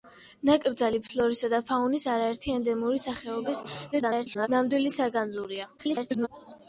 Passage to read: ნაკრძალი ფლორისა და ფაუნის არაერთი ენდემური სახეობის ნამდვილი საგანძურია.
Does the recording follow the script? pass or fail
fail